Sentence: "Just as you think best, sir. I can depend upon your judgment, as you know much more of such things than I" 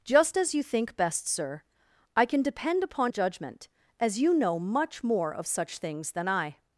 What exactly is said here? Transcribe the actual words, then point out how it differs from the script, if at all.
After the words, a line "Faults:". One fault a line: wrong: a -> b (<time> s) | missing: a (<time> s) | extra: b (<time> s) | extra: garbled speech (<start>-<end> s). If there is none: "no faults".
"Just as you think best, sir. I can depend upon judgment, as you know much more of such things than I"
Faults:
missing: your (3.1 s)